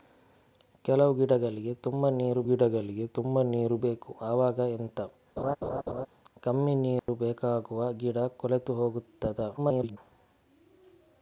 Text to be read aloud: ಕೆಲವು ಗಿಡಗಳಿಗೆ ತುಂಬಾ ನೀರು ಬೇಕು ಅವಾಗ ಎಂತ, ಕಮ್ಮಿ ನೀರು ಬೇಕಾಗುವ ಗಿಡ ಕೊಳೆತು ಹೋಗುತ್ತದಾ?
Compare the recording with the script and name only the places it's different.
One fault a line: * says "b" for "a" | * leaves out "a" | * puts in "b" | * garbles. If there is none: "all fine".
* puts in "ಗಿಡಗಳಿಗೆ ತುಂಬಾ ನೀರು"
* garbles